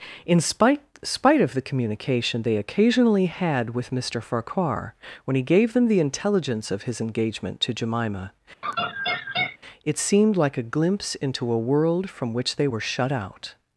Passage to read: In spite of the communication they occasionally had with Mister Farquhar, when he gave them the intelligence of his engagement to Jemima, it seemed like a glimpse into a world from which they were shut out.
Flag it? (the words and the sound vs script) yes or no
yes